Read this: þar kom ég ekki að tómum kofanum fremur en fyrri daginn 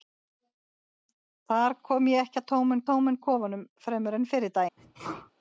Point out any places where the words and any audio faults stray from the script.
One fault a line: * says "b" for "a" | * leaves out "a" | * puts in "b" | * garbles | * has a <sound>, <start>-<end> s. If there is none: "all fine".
* puts in "tómum"
* has a sneeze, 4.8-5.3 s